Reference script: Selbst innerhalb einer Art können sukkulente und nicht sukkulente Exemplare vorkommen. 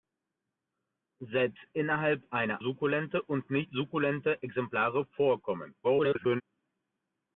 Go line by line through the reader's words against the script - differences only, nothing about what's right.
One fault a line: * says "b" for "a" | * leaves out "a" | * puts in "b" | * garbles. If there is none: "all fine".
* leaves out "Art können"
* garbles